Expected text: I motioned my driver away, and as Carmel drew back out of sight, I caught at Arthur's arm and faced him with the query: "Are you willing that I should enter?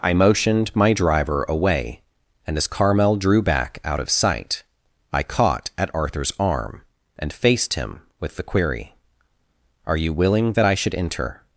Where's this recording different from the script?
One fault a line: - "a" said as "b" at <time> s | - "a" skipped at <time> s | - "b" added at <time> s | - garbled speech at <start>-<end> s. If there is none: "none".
none